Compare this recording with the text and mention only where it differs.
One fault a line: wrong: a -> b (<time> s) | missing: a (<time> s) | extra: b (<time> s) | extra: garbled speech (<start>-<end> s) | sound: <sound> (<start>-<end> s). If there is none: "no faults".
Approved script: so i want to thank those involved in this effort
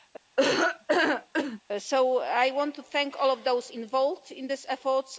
sound: laugh (0.4-1.6 s)
extra: all of (3.2 s)